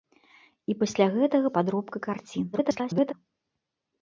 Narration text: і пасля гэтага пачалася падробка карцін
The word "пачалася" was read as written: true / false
false